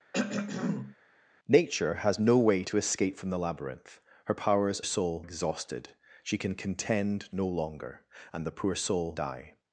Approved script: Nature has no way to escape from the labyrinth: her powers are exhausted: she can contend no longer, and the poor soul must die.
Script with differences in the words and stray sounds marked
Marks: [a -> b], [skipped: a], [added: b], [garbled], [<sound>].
[throat clearing] Nature has no way to escape from the labyrinth: her powers [are -> soul] exhausted: she can contend no longer, and the poor soul [skipped: must] die.